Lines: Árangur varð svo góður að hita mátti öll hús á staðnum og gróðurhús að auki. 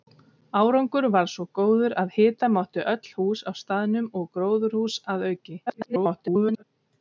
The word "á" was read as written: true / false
true